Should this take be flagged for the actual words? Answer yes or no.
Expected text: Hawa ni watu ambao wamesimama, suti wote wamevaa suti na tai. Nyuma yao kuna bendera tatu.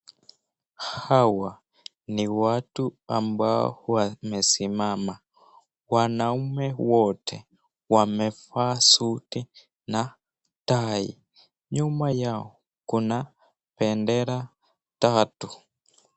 yes